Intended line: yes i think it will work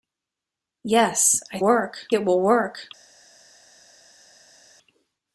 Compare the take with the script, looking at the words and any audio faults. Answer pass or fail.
fail